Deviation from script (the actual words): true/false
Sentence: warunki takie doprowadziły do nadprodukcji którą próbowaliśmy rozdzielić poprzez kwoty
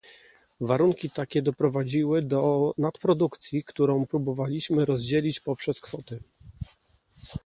false